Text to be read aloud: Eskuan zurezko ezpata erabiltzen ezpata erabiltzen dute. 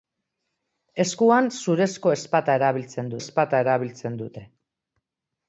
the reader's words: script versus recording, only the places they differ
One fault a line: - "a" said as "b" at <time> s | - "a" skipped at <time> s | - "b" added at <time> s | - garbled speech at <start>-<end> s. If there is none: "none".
none